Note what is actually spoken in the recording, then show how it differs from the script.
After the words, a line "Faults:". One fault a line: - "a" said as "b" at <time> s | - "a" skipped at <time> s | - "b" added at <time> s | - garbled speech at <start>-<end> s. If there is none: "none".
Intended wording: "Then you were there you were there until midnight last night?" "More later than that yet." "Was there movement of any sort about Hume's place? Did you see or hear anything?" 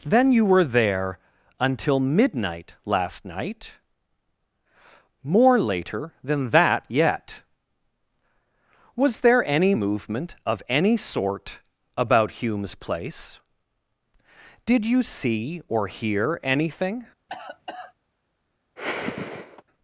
"Then you were there until midnight last night?" "More later than that yet." "Was there any movement of any sort about Hume's place? Did you see or hear anything?"
Faults:
- "you were there" skipped at 1.2 s
- "any" added at 9.4 s